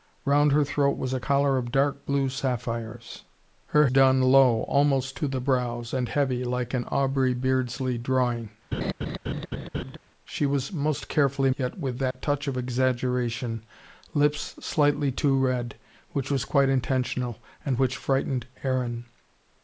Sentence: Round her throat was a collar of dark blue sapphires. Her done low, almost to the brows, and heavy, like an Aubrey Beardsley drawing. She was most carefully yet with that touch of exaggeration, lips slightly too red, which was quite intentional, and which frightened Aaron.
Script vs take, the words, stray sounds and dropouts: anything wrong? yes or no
yes